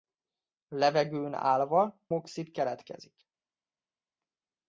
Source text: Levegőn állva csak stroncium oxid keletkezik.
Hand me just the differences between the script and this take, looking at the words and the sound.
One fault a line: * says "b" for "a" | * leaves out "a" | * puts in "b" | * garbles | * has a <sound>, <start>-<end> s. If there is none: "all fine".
* leaves out "csak stroncium"